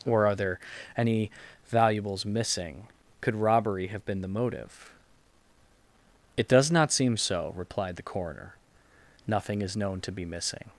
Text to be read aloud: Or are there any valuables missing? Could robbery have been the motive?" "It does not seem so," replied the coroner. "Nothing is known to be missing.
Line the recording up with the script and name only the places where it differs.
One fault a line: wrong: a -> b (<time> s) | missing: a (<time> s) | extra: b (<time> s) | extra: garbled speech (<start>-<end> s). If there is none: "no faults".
no faults